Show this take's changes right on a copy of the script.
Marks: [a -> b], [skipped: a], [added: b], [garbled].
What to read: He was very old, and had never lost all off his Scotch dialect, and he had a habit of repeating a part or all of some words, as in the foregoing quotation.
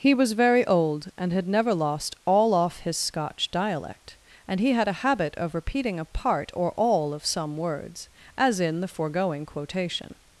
He was very old, and had never lost all off his Scotch dialect, and he had a habit of repeating a part or all of some words, as in the foregoing quotation.